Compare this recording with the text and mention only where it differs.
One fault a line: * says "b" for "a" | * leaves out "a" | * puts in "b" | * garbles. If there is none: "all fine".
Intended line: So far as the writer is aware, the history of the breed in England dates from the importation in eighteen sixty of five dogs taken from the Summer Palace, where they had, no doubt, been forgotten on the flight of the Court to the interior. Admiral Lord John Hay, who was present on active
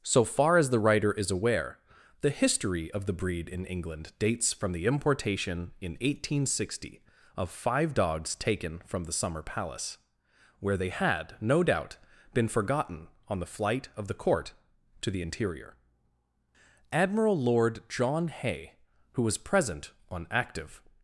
all fine